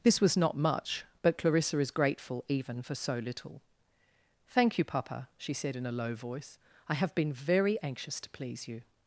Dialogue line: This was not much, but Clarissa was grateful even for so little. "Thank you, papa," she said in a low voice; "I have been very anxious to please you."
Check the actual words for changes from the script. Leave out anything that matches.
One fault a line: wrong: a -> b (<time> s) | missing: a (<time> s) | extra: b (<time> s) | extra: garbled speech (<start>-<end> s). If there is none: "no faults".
wrong: was -> is (1.8 s)